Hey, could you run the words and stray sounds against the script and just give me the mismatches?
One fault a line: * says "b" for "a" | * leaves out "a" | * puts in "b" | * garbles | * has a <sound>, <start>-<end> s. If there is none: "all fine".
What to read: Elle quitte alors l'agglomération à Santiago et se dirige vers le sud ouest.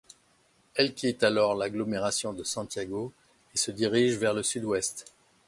* says "de" for "à"